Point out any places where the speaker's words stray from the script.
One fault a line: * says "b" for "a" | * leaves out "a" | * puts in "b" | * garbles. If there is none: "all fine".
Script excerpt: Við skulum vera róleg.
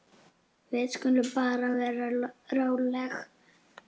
* puts in "bara"